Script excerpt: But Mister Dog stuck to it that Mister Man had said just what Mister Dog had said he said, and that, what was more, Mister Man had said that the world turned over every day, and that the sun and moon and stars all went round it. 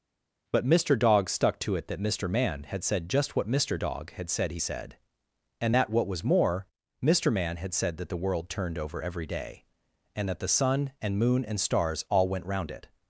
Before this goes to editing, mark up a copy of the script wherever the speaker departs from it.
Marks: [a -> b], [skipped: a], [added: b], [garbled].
But Mister Dog stuck to it that Mister Man had said just what Mister Dog had said he said, and that, what was more, Mister Man had said that the world turned over every day, and that the sun and moon and stars all went round it.